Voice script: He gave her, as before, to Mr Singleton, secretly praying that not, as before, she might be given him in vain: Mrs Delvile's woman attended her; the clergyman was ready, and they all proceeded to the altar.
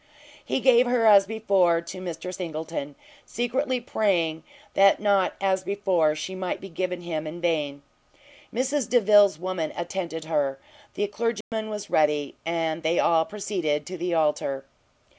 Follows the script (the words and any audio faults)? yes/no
no